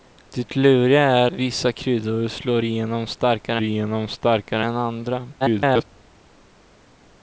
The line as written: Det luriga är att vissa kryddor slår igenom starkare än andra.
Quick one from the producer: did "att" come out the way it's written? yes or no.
no